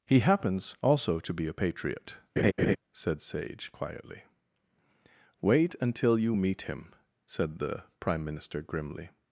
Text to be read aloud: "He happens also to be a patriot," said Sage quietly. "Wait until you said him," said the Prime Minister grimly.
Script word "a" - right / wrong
right